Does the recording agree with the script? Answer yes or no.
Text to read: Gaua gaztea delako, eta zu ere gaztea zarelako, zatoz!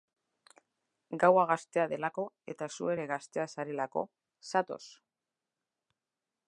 yes